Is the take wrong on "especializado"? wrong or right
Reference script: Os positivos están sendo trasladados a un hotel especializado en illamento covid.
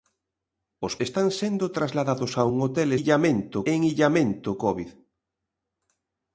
wrong